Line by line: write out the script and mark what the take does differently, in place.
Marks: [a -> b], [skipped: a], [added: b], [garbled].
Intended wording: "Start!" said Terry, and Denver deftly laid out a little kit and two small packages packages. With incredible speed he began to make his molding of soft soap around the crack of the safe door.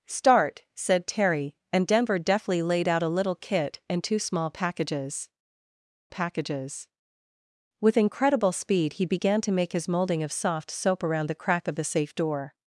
"Start!" said Terry, and Denver deftly laid out a little kit and two small packages packages. With incredible speed he began to make his molding of soft soap around the crack of the safe door.